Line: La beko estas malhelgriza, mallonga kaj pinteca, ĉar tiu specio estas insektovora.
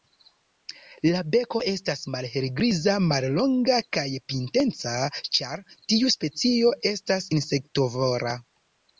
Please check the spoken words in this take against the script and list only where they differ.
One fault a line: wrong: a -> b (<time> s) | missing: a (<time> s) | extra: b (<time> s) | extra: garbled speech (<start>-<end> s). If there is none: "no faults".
no faults